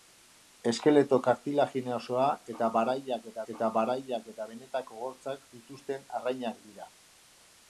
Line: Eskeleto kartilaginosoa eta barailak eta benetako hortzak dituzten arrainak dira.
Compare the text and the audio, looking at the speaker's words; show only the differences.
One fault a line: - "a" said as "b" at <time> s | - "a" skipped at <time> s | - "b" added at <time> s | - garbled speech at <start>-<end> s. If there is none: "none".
- "eta barailak eta" added at 3.5 s